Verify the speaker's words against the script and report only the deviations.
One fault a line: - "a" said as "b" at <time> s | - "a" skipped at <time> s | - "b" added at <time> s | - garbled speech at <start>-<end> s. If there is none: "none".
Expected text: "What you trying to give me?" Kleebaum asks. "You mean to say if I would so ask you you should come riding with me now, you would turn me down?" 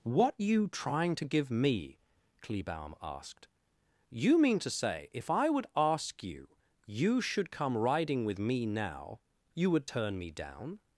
- "asks" said as "asked" at 3.0 s
- "so" skipped at 5.7 s